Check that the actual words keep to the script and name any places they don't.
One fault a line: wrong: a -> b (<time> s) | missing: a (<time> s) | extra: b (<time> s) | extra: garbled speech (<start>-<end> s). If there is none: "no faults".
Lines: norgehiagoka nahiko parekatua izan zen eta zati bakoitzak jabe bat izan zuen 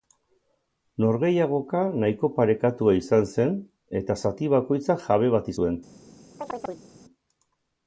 missing: izan (5.5 s)